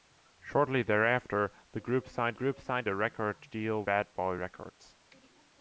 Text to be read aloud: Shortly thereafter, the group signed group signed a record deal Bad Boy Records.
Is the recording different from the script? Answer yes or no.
no